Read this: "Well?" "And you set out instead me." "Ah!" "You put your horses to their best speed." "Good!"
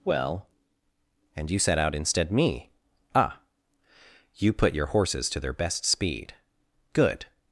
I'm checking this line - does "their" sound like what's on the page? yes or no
yes